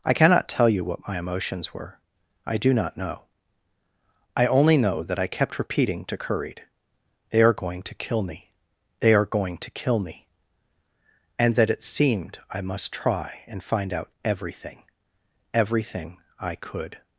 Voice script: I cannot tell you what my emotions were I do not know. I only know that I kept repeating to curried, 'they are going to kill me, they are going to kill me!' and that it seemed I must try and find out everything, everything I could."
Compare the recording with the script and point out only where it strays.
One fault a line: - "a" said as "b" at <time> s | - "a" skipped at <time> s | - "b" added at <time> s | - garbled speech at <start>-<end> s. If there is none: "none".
none